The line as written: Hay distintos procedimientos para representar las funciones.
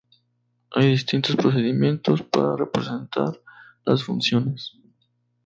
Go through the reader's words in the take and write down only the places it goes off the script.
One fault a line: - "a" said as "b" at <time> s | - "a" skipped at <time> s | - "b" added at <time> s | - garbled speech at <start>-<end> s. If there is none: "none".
none